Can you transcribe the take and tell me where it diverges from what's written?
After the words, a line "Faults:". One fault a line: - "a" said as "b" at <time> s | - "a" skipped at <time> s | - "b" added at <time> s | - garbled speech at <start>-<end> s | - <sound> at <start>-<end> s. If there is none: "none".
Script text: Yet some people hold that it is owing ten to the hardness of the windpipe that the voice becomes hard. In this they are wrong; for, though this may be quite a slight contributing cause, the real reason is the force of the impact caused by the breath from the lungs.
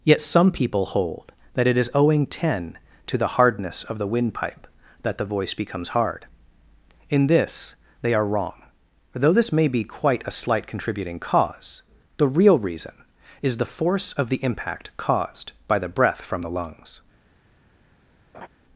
Yet some people hold that it is owing ten to the hardness of the windpipe that the voice becomes hard. In this they are wrong; though this may be quite a slight contributing cause, the real reason is the force of the impact caused by the breath from the lungs.
Faults:
- "for" skipped at 8.5 s
- laugh at 18.3-18.5 s